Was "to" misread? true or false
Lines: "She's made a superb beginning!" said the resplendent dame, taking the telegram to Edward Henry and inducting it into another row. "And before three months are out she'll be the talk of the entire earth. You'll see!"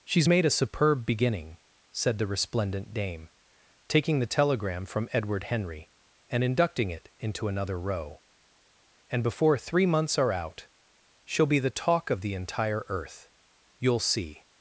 true